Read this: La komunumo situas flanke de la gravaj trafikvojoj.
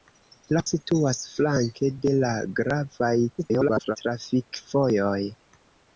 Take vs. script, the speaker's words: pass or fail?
fail